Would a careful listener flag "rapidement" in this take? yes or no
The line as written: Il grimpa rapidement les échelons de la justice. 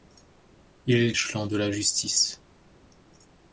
yes